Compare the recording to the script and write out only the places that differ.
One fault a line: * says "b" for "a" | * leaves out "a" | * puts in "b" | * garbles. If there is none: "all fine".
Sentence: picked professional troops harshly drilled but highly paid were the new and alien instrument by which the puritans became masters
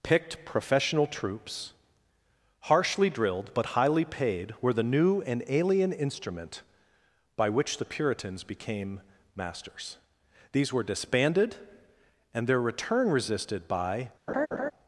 * puts in "these were disbanded and their return resisted by"